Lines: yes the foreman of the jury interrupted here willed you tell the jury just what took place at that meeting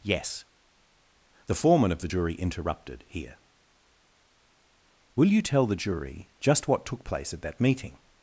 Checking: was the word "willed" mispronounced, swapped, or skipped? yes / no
yes